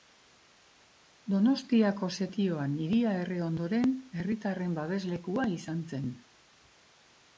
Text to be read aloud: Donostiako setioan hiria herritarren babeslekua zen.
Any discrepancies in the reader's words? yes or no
yes